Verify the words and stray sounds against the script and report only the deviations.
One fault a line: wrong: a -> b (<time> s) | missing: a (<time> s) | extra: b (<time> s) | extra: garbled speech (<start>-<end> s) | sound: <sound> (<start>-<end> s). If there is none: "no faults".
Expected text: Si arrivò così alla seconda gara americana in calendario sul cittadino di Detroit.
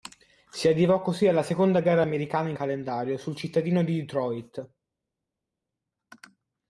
no faults